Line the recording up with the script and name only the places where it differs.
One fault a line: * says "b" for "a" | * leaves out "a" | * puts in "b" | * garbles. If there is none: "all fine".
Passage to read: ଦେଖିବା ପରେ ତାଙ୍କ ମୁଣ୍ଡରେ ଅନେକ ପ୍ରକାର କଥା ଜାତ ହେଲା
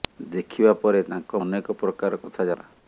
* leaves out "ମୁଣ୍ଡରେ"
* leaves out "ଜାତ"